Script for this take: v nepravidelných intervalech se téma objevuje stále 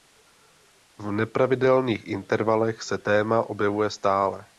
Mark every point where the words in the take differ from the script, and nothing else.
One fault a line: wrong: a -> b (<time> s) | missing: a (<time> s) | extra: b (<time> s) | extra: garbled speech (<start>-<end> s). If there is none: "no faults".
no faults